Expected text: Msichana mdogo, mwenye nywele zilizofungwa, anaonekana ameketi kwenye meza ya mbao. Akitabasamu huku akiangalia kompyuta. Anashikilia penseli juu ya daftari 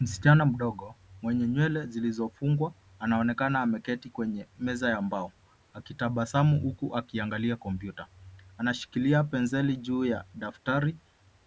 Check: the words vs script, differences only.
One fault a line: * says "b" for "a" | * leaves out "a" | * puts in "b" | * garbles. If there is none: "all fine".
all fine